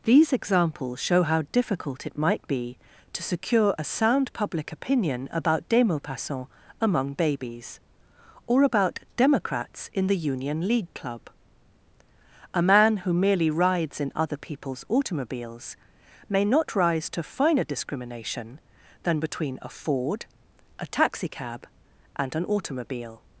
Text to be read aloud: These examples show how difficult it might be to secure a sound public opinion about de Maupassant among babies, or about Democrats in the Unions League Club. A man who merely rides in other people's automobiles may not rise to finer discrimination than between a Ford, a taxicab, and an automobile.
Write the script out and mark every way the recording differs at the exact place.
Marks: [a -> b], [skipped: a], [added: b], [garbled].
These examples show how difficult it might be to secure a sound public opinion about de Maupassant among babies, or about Democrats in the [Unions -> Union] League Club. A man who merely rides in other people's automobiles may not rise to finer discrimination than between a Ford, a taxicab, and an automobile.